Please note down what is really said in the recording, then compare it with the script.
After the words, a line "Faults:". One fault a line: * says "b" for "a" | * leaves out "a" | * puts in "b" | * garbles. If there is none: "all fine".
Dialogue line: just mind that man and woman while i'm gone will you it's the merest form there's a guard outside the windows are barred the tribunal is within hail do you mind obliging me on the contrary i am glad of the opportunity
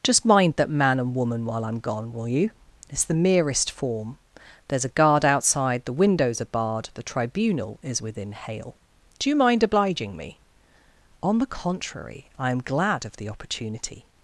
just mind that man and woman while i'm gone will you it's the merest form there's a guard outside the windows are barred the tribunal is within hail do you mind obliging me on the contrary i am glad of the opportunity
Faults:
all fine